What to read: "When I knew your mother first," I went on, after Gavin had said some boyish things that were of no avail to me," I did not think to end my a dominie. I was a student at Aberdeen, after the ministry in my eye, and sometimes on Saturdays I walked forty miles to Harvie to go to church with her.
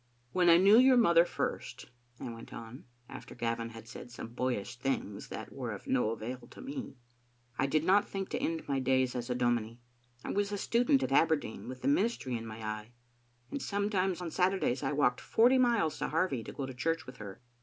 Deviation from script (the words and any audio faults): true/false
true